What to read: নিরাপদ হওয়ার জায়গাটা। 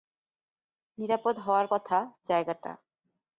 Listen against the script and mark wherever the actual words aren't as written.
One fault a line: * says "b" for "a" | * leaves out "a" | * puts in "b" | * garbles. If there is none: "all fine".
* puts in "কথা"